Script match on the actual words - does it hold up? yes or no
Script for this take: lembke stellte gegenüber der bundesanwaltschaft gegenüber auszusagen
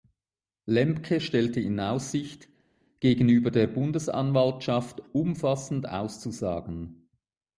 no